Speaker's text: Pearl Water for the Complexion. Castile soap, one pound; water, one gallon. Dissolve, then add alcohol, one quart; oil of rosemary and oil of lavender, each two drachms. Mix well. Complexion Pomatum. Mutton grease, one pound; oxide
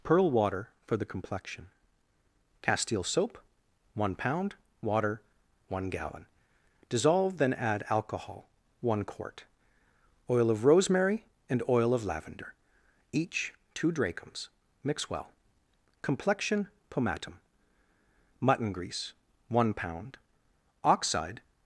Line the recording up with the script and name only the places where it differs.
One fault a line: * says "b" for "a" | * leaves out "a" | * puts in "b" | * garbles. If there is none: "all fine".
all fine